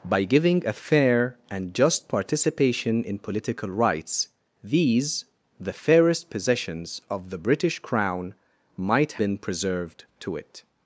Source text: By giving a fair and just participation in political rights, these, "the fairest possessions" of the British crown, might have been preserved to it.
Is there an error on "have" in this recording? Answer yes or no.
yes